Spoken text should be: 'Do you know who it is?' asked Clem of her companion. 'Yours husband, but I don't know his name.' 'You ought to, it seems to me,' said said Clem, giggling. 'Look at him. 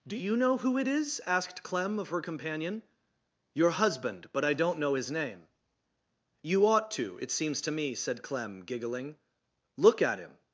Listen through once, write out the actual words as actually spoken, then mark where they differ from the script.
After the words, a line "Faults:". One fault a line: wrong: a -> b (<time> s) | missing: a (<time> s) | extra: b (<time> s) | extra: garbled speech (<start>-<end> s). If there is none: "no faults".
'Do you know who it is?' asked Clem of her companion. 'Your husband, but I don't know his name.' 'You ought to, it seems to me,' said Clem, giggling. 'Look at him.
Faults:
wrong: Yours -> Your (3.5 s)
missing: said (8.2 s)